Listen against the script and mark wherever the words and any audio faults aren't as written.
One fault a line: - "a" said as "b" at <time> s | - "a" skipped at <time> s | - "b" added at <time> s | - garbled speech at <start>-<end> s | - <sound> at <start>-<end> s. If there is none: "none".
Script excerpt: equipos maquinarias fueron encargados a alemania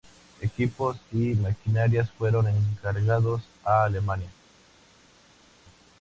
- "y" added at 1.1 s